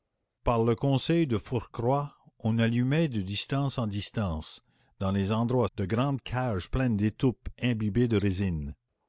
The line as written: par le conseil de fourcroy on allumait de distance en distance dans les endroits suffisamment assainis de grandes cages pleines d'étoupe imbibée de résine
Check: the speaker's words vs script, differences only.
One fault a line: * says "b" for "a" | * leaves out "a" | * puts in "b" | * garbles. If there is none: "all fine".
* leaves out "suffisamment assainis"